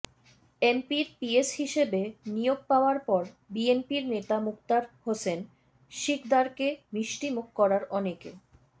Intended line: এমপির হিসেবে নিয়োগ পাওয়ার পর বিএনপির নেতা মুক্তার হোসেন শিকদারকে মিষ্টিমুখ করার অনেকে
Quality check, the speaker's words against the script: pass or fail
fail